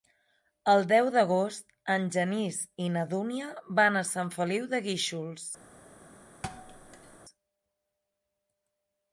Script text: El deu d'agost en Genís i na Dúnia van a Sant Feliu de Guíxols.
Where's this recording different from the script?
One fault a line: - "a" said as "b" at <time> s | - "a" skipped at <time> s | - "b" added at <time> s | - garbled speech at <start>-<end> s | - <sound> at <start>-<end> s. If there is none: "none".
- thud at 6.4-7.2 s